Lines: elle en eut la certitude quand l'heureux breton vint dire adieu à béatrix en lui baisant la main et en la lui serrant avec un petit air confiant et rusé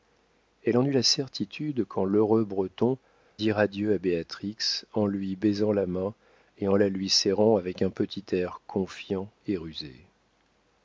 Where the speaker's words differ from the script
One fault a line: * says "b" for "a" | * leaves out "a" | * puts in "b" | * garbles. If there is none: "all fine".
* leaves out "vint"